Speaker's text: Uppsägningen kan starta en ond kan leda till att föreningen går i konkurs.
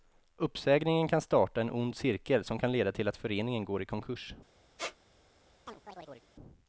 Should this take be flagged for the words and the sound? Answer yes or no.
yes